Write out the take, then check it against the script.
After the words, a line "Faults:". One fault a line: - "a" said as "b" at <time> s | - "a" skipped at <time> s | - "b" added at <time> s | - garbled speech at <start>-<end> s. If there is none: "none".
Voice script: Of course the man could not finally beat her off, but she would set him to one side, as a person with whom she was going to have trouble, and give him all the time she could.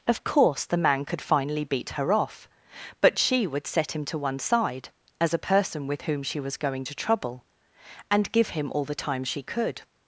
Of course the man could finally beat her off, but she would set him to one side, as a person with whom she was going to trouble, and give him all the time she could.
Faults:
- "not" skipped at 1.2 s
- "have" skipped at 6.9 s